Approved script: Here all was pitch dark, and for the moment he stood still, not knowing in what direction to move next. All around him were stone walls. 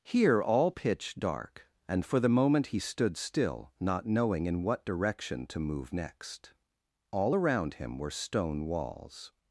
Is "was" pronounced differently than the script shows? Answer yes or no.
yes